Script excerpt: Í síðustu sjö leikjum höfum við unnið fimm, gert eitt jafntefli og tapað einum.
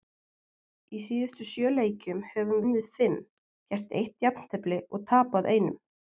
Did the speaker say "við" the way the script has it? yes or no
no